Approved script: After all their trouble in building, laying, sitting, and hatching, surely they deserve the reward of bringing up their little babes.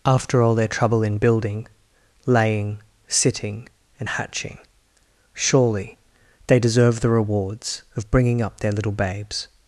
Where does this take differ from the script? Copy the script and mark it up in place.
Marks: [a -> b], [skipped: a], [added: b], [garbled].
After all their trouble in building, laying, sitting, and hatching, surely they deserve the [reward -> rewards] of bringing up their little babes.